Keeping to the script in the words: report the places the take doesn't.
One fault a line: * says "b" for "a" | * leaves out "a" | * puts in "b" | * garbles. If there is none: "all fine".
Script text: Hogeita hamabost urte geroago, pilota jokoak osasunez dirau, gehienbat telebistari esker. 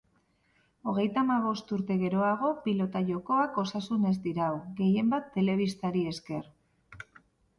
all fine